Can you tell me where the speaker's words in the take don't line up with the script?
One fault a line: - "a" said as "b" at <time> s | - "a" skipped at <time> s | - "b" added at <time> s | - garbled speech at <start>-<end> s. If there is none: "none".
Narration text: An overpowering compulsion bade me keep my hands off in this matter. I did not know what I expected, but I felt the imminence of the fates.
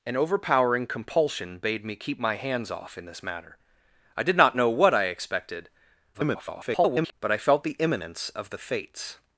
- garbled speech at 6.1-7.1 s